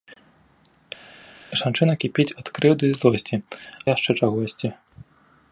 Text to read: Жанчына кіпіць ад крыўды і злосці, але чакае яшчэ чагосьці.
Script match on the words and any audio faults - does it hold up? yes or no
no